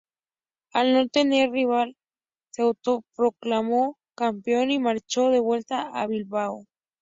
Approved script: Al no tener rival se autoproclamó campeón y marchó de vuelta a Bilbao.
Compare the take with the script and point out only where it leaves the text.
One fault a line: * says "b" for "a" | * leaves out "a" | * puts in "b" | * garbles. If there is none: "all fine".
all fine